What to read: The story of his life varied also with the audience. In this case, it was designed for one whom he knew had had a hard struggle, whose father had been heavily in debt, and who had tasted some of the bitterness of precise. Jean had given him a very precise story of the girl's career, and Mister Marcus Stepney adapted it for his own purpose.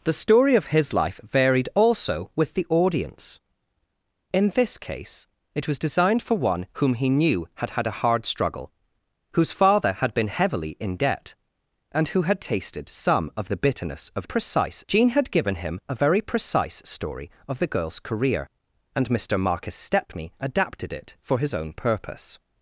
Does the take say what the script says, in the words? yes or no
yes